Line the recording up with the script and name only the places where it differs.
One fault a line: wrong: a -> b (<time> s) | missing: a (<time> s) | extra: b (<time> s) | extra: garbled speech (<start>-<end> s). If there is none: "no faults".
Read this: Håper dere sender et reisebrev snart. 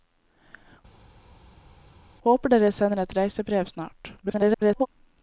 extra: garbled speech (4.2-4.9 s)